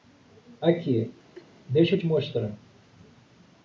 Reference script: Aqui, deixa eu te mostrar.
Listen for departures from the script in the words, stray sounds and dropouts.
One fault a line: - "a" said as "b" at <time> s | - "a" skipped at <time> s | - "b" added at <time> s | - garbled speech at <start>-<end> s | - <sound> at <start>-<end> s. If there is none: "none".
- laugh at 1.3-1.5 s